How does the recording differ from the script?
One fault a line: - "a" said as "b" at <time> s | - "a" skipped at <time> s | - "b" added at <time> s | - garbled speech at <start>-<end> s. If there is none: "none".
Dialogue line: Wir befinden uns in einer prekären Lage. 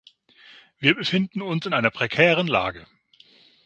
none